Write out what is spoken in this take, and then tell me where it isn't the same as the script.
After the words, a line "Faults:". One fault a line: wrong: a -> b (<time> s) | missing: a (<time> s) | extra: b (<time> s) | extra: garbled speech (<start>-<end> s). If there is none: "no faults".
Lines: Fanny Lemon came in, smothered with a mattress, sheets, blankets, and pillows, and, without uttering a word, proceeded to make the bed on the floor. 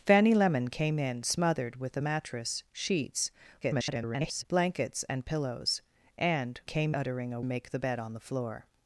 Fanny Lemon came in, smothered with a mattress, sheets, [garbled] blankets, and pillows, and, came uttering a make the bed on the floor.
Faults:
extra: garbled speech (3.6-4.4 s)
wrong: without -> came (6.6 s)
missing: word proceeded to (7.4 s)